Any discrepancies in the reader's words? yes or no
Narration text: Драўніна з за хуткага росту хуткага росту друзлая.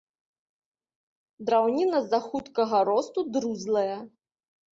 yes